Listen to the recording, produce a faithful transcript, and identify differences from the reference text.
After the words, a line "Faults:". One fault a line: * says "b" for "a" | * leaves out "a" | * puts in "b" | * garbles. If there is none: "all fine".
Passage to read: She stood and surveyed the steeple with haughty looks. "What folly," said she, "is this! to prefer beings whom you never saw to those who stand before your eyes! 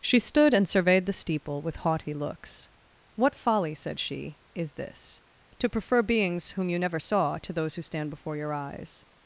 She stood and surveyed the steeple with haughty looks. "What folly," said she, "is this! to prefer beings whom you never saw to those who stand before your eyes!
Faults:
all fine